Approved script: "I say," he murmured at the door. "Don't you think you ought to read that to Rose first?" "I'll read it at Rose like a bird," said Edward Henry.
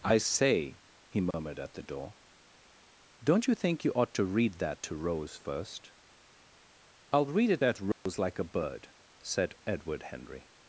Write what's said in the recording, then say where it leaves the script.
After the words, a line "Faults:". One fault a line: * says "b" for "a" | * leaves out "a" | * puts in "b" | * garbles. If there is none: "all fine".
"I say," he murmured at the door. "Don't you think you ought to read that to Rose first?" "I'll read it at Rose like a bird," said Edward Henry.
Faults:
all fine